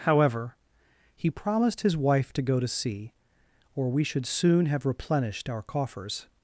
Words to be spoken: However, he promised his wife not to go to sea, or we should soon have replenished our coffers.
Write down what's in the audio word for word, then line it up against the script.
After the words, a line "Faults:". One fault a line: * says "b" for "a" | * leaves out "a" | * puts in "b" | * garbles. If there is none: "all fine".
However, he promised his wife to go to sea, or we should soon have replenished our coffers.
Faults:
* leaves out "not"